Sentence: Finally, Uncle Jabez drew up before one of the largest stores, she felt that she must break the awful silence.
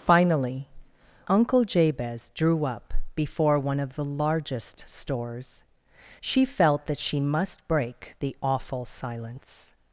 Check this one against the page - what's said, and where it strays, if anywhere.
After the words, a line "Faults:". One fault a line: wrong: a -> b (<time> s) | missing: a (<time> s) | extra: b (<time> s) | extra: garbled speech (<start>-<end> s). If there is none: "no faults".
Finally, Uncle Jabez drew up before one of the largest stores, she felt that she must break the awful silence.
Faults:
no faults